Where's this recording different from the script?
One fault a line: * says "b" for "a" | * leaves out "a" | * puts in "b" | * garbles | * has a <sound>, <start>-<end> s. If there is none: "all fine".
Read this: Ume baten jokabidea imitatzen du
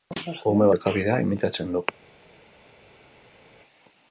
* leaves out "baten"